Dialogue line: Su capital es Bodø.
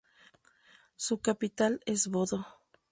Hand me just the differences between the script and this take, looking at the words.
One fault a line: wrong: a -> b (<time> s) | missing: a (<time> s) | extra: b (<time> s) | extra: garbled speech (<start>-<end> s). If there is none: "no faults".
no faults